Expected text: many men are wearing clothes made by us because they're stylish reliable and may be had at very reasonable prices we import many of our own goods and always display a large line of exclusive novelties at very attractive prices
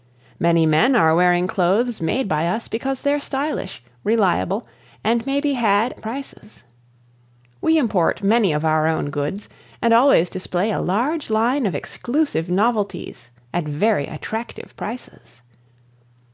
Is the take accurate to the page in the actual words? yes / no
no